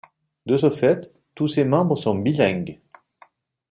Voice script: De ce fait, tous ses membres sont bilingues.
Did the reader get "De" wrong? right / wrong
right